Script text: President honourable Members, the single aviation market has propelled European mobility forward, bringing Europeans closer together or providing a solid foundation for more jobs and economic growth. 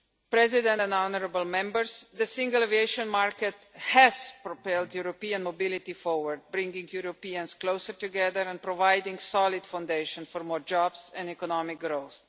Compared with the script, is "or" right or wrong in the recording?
wrong